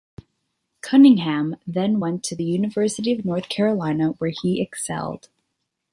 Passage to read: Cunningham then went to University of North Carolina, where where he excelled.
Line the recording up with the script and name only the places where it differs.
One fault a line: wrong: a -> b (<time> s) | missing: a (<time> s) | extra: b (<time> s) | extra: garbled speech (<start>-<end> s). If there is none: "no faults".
extra: the (2.3 s)
missing: where (4.3 s)